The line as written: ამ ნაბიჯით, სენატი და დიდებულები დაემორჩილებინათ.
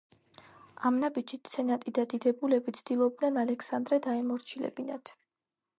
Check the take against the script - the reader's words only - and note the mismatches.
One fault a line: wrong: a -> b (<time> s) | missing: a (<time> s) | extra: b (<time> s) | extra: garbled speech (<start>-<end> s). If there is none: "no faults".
extra: ცდილობდნენ ალექსანდრე (2.8 s)